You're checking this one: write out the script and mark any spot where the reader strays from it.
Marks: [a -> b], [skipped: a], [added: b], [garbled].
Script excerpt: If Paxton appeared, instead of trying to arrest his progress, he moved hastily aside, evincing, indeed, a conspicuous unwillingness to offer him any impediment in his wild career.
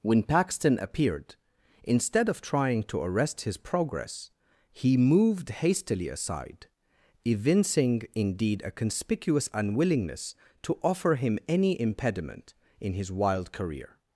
[If -> When] Paxton appeared, instead of trying to arrest his progress, he moved hastily aside, evincing, indeed, a conspicuous unwillingness to offer him any impediment in his wild career.